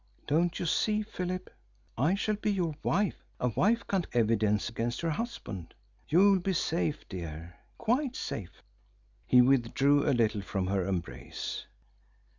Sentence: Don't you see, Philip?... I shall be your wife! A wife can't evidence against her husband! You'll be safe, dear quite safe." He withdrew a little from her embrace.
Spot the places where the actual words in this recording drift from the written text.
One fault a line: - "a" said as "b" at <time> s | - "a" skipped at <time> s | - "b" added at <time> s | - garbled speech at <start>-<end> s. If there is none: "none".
none